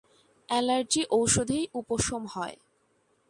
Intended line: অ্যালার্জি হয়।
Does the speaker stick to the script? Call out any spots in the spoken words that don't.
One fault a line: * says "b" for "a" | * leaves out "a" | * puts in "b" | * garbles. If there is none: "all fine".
* puts in "ঔষধেই উপশম"